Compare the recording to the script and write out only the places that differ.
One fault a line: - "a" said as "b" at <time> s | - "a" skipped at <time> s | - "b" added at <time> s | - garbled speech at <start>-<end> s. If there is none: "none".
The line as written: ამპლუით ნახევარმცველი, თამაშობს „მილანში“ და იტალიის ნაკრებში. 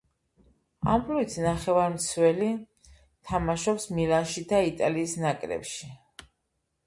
none